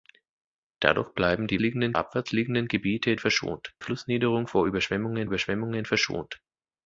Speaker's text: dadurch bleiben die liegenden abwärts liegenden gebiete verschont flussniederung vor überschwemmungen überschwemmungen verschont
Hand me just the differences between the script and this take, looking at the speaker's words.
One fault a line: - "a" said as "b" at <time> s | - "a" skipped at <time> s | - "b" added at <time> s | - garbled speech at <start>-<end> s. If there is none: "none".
none